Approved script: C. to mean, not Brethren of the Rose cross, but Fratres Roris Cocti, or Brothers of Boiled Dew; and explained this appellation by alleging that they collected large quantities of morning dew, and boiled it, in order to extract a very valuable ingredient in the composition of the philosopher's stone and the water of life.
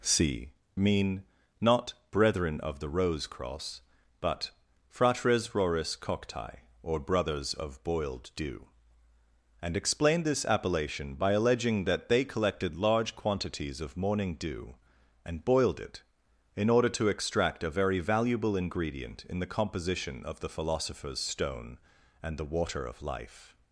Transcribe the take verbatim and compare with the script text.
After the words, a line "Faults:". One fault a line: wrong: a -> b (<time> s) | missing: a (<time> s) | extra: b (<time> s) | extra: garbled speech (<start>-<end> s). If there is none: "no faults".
C. mean, not Brethren of the Rose cross, but Fratres Roris Cocti, or Brothers of Boiled Dew; and explained this appellation by alleging that they collected large quantities of morning dew, and boiled it, in order to extract a very valuable ingredient in the composition of the philosopher's stone and the water of life.
Faults:
missing: to (0.5 s)